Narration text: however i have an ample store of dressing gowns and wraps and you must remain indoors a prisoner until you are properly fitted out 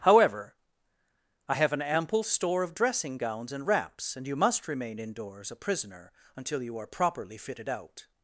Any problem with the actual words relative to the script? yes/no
no